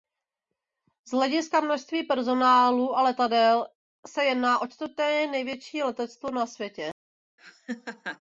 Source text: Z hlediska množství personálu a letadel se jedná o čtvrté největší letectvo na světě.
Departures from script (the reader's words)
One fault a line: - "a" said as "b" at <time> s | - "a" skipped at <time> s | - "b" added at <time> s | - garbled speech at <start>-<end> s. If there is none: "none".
none